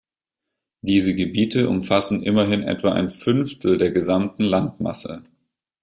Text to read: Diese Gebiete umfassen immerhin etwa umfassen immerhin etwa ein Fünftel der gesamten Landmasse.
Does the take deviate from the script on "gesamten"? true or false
false